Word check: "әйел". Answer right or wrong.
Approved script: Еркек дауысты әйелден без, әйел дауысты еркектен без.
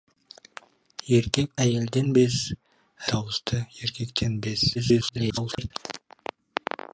wrong